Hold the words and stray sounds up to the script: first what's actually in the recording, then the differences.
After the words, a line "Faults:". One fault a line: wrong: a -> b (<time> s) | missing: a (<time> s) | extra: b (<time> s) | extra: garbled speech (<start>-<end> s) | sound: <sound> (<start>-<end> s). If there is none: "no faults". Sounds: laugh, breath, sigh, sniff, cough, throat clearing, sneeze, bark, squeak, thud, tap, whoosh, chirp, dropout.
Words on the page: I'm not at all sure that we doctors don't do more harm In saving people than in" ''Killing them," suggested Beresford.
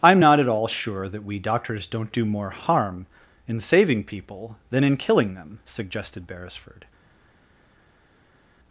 I'm not at all sure that we doctors don't do more harm In saving people than in" ''Killing them," suggested Beresford.
Faults:
no faults